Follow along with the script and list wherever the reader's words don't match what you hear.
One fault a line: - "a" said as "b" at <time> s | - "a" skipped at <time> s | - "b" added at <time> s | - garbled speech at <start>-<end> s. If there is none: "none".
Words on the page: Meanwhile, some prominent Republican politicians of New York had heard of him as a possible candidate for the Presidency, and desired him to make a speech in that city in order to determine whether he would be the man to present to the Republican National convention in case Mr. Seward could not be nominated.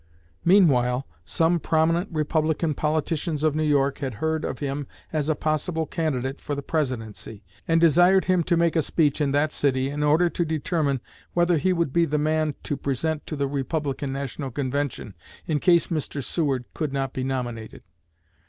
none